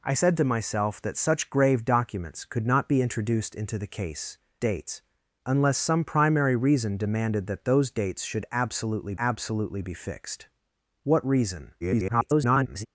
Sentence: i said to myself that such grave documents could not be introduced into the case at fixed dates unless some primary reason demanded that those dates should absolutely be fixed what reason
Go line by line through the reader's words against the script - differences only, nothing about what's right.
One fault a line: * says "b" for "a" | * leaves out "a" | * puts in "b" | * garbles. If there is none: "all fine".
* leaves out "at fixed"
* puts in "absolutely"
* garbles